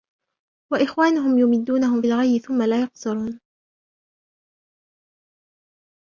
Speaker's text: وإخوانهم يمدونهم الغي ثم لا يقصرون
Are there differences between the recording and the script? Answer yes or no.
no